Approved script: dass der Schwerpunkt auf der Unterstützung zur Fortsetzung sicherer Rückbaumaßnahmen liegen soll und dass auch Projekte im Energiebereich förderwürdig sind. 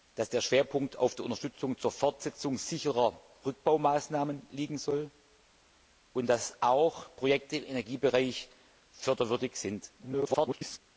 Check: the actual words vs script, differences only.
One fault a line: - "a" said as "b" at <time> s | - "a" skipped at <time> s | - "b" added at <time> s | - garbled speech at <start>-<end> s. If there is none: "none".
- garbled speech at 10.0-10.8 s